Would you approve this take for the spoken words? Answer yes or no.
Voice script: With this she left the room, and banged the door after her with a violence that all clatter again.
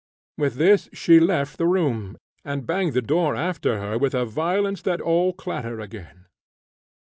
yes